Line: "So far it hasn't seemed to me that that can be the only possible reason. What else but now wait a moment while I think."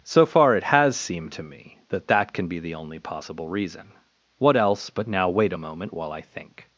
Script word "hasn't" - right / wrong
wrong